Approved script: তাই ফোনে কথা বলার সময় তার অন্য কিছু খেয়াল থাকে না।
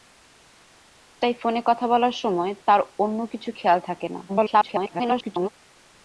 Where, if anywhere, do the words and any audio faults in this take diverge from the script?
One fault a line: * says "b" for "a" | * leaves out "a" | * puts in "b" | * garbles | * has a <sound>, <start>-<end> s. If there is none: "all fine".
* garbles